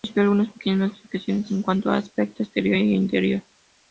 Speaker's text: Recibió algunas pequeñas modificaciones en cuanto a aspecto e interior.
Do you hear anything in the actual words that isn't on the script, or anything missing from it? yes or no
yes